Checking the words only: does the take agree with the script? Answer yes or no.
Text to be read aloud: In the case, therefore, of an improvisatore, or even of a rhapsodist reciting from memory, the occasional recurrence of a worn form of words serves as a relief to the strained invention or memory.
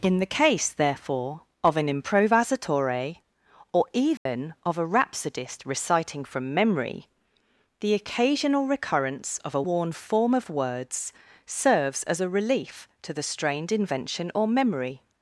yes